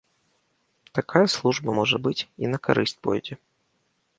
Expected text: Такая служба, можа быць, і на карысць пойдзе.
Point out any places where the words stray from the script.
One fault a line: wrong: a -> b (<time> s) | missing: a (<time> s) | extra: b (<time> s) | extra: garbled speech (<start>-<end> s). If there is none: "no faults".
no faults